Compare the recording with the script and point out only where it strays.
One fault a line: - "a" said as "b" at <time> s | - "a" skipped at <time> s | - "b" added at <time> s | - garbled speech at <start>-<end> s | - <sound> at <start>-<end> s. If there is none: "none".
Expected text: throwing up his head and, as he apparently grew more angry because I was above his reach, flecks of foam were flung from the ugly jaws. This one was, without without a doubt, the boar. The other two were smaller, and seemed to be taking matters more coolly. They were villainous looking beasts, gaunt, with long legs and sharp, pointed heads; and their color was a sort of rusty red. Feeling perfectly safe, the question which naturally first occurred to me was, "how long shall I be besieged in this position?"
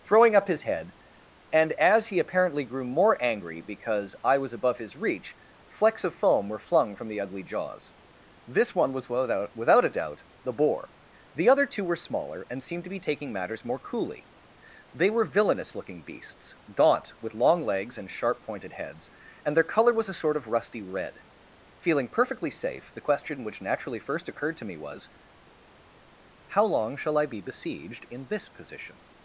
none